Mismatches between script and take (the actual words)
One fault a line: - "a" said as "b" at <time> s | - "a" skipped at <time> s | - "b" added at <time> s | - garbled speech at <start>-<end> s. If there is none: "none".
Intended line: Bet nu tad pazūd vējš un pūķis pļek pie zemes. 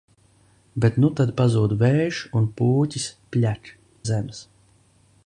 - "pie" skipped at 3.7 s